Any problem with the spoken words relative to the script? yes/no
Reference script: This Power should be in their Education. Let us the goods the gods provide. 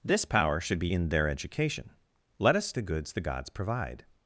no